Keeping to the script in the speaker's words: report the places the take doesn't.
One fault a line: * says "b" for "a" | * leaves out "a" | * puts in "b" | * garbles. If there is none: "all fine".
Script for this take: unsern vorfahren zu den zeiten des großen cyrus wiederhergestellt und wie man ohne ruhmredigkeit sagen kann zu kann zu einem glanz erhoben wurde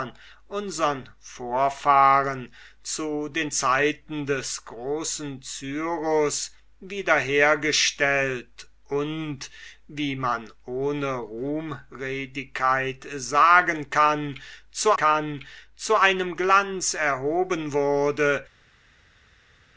all fine